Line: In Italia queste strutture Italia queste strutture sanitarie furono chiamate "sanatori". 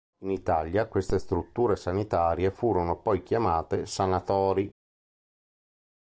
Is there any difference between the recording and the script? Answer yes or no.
yes